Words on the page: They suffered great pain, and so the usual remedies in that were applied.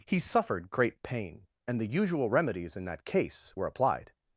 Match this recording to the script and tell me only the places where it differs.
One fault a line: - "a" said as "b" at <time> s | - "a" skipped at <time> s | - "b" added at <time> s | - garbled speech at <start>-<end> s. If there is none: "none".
- "They" said as "He" at 0.1 s
- "so" skipped at 1.8 s
- "case" added at 3.0 s